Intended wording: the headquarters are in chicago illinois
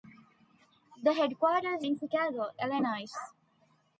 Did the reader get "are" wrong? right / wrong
wrong